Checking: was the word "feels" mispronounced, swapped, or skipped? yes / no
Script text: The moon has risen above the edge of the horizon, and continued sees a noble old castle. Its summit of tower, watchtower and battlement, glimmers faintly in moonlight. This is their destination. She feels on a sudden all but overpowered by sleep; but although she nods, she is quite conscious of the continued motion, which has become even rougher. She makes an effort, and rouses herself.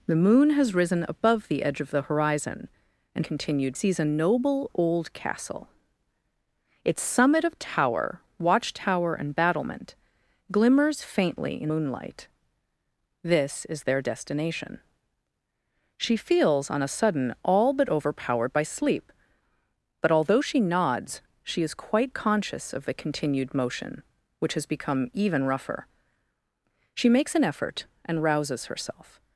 no